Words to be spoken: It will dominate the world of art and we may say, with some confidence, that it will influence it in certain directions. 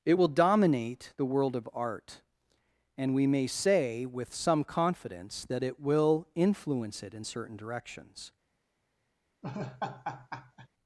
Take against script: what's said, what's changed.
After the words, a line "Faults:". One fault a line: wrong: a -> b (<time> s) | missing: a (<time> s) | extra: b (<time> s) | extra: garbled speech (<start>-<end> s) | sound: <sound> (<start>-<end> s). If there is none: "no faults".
It will dominate the world of art and we may say, with some confidence, that it will influence it in certain directions.
Faults:
sound: laugh (9.4-10.7 s)